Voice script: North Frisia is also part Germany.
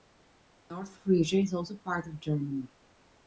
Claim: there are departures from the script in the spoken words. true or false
true